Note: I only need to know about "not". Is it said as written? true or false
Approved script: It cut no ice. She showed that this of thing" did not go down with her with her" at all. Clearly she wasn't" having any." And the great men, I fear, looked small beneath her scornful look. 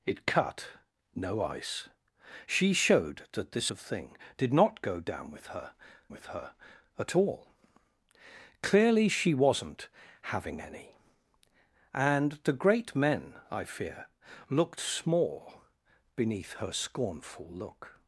true